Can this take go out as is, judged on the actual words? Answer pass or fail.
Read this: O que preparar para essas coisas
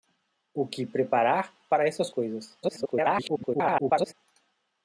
fail